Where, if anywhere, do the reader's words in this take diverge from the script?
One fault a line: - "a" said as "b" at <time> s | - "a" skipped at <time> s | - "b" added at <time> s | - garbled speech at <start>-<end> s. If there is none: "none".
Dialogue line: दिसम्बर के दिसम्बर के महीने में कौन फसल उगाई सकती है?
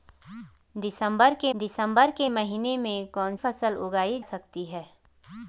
none